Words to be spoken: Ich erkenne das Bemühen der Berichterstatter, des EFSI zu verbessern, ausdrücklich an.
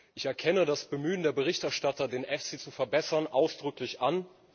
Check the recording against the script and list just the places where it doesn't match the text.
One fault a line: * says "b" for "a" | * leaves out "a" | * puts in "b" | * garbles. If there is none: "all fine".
* says "den" for "des"